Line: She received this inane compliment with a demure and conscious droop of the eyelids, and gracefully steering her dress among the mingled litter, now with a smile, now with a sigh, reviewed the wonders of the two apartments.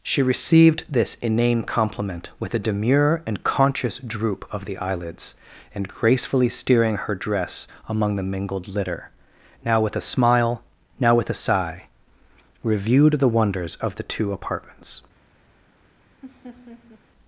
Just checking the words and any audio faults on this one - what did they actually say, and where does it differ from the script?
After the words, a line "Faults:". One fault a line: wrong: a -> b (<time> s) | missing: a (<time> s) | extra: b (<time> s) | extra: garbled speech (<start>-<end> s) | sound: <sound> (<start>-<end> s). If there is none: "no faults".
She received this inane compliment with a demure and conscious droop of the eyelids, and gracefully steering her dress among the mingled litter, now with a smile, now with a sigh, reviewed the wonders of the two apartments.
Faults:
sound: laugh (16.2-17.0 s)